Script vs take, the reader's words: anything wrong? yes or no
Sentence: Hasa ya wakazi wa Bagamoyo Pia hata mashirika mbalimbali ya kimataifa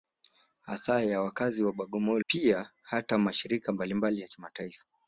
no